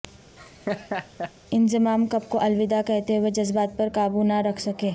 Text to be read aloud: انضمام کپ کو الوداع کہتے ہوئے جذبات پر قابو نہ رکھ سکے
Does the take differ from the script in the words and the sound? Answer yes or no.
yes